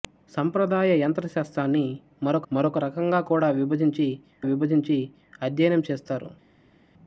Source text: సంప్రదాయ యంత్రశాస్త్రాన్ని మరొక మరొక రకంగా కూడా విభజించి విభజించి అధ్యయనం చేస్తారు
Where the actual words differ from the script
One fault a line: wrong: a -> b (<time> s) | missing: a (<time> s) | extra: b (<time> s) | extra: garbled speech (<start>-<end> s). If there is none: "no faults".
no faults